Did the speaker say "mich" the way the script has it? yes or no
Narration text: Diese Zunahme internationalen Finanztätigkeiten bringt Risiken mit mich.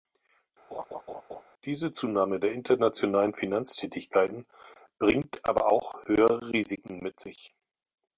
no